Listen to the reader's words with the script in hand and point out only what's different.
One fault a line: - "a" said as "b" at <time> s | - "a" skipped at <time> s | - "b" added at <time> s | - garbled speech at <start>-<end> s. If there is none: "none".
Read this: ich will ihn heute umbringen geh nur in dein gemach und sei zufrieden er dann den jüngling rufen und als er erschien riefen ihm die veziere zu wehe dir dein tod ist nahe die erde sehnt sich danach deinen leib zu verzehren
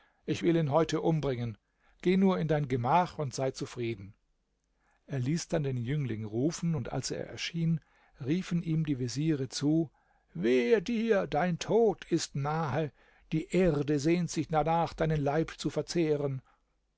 - "ließ" added at 5.2 s